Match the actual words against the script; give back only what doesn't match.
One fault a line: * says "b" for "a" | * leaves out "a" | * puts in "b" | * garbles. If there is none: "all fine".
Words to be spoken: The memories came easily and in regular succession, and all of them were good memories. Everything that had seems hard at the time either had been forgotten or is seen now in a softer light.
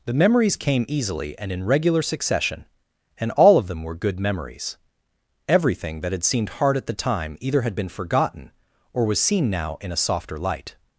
* says "seemed" for "seems"
* says "was" for "is"